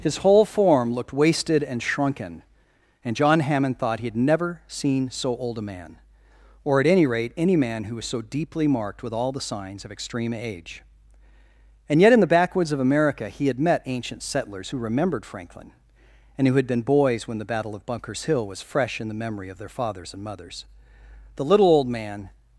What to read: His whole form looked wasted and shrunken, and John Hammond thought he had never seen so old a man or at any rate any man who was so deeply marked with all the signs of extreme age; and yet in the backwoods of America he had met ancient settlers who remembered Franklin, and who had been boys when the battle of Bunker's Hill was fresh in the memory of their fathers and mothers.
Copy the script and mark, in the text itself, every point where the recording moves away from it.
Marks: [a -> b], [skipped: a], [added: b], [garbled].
His whole form looked wasted and shrunken, and John Hammond thought he had never seen so old a man or at any rate any man who was so deeply marked with all the signs of extreme age; and yet in the backwoods of America he had met ancient settlers who remembered Franklin, and who had been boys when the battle of Bunker's Hill was fresh in the memory of their fathers and mothers. [added: The little old man]